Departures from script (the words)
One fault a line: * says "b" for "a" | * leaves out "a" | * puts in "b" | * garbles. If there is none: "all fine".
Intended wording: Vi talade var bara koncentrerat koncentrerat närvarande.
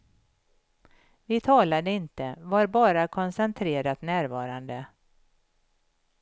* puts in "inte"
* leaves out "koncentrerat"